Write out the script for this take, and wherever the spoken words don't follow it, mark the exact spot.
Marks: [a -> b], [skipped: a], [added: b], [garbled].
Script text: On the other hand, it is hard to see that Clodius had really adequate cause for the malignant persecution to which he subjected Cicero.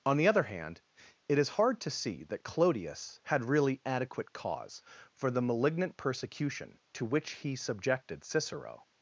On the other hand, it is hard to see that Clodius had really adequate cause for the malignant persecution to which he subjected Cicero.